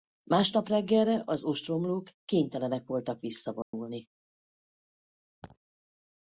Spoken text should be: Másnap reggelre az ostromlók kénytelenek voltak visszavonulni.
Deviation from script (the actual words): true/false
false